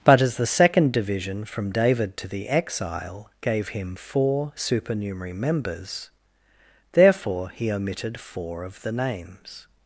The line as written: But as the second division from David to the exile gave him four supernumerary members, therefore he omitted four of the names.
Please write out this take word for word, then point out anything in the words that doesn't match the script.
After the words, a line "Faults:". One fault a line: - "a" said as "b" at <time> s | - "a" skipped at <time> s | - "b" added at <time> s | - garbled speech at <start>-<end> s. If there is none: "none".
But as the second division from David to the exile gave him four supernumerary members, therefore he omitted four of the names.
Faults:
none